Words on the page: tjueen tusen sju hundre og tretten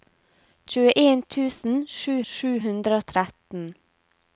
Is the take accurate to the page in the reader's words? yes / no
no